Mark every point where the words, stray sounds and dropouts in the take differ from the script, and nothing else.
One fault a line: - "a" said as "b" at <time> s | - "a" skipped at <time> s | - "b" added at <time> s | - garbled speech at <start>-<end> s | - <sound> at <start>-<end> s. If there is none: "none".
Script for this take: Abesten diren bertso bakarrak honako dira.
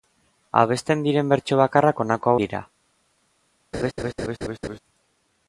- laugh at 3.7-4.8 s